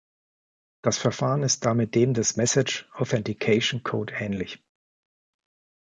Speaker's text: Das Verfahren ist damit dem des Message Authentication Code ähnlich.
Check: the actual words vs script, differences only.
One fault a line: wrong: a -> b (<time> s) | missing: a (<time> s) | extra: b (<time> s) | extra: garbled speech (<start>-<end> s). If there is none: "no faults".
no faults